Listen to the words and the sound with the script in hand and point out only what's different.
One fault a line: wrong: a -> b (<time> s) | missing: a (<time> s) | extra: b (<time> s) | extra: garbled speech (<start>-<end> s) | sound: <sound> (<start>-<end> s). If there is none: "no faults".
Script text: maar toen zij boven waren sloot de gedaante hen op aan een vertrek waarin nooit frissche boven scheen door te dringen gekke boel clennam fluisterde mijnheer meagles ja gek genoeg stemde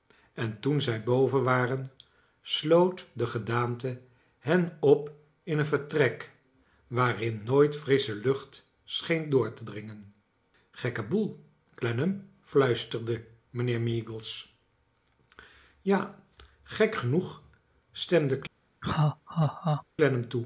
wrong: maar -> en (0.3 s)
wrong: aan -> in (5.4 s)
wrong: boven -> lucht (8.2 s)
sound: laugh (18.8-19.8 s)